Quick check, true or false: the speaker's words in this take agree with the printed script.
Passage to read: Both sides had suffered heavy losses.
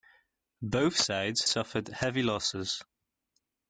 false